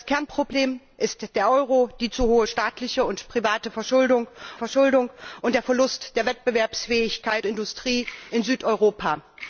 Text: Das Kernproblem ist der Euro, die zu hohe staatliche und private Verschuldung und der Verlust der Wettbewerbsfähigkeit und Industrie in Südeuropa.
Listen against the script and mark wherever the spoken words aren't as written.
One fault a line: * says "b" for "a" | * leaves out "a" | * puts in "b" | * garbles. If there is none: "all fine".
* puts in "Verschuldung"
* leaves out "und"